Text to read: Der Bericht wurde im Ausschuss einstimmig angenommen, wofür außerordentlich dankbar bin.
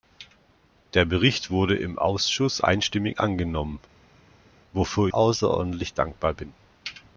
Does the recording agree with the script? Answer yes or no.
yes